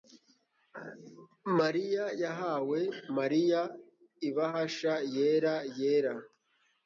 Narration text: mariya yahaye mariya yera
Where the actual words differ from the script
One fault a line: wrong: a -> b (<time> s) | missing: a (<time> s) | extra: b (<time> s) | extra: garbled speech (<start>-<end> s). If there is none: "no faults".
extra: ibahasha yera (4.3 s)